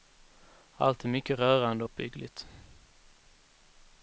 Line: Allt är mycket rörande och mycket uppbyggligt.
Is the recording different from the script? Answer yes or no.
yes